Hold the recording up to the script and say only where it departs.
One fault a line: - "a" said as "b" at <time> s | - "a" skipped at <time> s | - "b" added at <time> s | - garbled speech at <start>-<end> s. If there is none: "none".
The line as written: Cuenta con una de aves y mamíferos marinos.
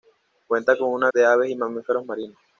none